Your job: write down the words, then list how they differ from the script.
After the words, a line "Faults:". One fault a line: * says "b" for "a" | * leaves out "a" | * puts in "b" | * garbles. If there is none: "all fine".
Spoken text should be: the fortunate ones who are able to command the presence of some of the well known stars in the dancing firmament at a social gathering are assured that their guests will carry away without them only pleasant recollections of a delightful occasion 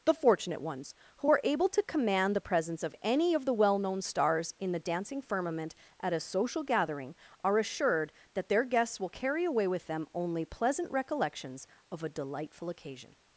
the fortunate ones who are able to command the presence of any of the well known stars in the dancing firmament at a social gathering are assured that their guests will carry away with them only pleasant recollections of a delightful occasion
Faults:
* says "any" for "some"
* says "with" for "without"